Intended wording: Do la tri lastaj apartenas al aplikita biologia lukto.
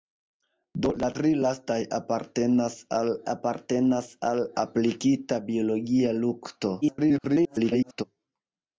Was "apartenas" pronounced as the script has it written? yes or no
yes